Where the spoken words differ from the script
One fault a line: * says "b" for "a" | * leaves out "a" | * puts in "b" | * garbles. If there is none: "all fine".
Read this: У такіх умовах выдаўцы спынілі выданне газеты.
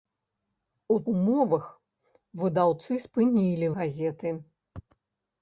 * leaves out "такіх"
* leaves out "выданне"